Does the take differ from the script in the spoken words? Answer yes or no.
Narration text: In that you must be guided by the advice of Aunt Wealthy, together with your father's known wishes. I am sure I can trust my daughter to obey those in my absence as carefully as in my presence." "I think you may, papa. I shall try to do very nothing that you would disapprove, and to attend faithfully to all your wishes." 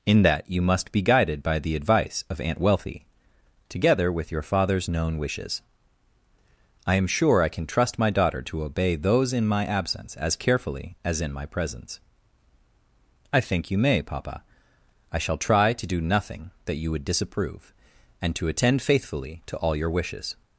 yes